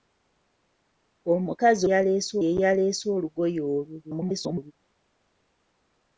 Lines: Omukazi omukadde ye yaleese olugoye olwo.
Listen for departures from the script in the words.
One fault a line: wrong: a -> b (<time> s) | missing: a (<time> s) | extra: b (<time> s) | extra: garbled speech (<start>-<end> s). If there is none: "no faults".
wrong: omukadde -> yaleese (1.9 s)
extra: garbled speech (4.0-4.7 s)